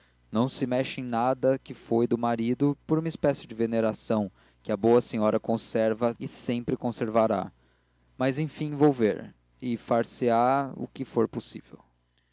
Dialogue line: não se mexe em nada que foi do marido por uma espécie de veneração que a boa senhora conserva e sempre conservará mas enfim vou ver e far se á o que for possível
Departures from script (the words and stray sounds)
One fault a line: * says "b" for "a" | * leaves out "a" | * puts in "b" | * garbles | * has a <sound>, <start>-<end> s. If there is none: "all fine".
all fine